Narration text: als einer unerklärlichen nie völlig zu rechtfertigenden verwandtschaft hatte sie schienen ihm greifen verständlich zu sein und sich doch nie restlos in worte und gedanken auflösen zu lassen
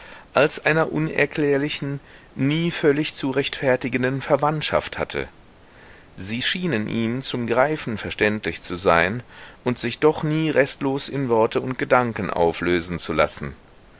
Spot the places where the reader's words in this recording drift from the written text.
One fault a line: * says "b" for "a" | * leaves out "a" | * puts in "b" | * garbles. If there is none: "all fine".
* puts in "zum"